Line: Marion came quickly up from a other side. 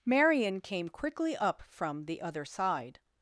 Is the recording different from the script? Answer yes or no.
yes